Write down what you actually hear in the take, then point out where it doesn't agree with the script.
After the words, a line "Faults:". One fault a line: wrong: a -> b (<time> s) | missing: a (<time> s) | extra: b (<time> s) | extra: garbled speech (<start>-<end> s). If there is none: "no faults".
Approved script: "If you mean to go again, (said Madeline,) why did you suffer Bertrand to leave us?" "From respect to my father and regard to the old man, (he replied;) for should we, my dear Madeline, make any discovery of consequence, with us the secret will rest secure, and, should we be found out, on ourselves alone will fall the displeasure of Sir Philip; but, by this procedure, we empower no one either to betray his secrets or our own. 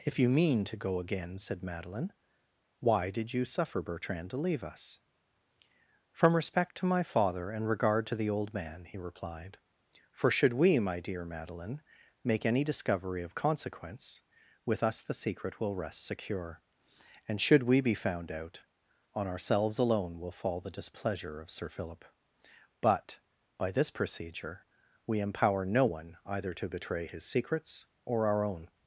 "If you mean to go again, (said Madeline,) why did you suffer Bertrand to leave us?" "From respect to my father and regard to the old man, (he replied;) for should we, my dear Madeline, make any discovery of consequence, with us the secret will rest secure, and, should we be found out, on ourselves alone will fall the displeasure of Sir Philip; but, by this procedure, we empower no one either to betray his secrets or our own.
Faults:
no faults